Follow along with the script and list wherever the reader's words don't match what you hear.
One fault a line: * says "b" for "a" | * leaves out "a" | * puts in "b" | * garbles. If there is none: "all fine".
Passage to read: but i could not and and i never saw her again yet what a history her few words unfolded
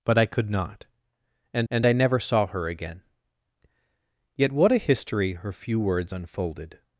all fine